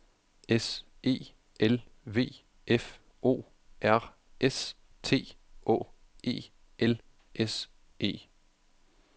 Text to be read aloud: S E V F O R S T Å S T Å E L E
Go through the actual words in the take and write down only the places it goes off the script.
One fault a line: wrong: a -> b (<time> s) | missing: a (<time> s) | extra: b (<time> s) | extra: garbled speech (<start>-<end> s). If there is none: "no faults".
extra: L (1.6 s)
missing: S T Å (5.8 s)
extra: S (7.3 s)